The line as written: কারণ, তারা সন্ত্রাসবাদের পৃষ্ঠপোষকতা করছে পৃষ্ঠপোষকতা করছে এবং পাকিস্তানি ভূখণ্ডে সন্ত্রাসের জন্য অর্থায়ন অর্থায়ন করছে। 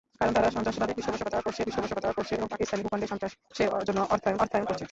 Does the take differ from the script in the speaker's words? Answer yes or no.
no